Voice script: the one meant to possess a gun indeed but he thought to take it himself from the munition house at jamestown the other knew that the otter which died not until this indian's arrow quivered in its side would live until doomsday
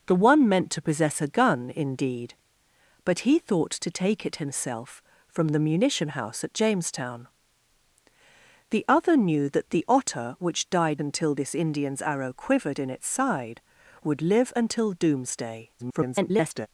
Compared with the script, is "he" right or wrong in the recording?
right